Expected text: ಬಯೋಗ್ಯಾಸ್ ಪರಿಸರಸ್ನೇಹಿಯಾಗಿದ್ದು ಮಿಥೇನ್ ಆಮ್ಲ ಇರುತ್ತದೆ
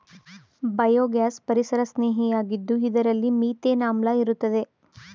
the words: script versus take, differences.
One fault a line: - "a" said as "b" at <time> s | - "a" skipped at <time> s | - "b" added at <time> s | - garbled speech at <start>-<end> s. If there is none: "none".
- "ಇದರಲ್ಲಿ" added at 2.9 s